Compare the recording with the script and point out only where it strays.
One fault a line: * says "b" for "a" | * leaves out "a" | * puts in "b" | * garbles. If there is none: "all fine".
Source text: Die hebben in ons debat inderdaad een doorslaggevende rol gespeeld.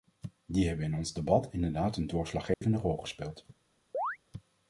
all fine